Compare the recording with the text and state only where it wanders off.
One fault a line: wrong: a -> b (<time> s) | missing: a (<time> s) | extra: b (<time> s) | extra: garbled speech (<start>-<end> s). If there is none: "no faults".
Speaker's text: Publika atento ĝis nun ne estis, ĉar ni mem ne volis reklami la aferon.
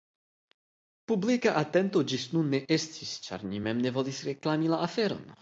no faults